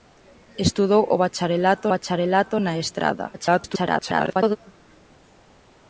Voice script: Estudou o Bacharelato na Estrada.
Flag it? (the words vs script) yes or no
yes